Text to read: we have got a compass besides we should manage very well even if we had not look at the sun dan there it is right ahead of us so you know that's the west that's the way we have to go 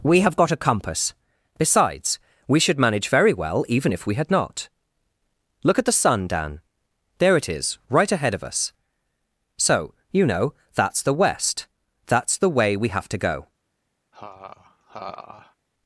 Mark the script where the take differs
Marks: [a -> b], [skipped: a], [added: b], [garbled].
we have got a compass besides we should manage very well even if we had not look at the sun dan there it is right ahead of us so you know that's the west that's the way we have to go